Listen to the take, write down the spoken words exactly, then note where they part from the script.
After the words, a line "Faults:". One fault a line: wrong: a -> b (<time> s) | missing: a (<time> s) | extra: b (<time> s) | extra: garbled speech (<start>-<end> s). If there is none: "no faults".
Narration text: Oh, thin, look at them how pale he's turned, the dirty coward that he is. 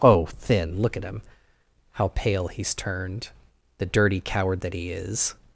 Oh, thin, look at him how pale he's turned, the dirty coward that he is.
Faults:
wrong: them -> him (1.0 s)